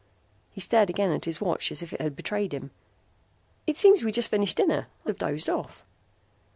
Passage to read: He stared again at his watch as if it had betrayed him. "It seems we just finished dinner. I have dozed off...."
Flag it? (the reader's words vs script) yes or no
no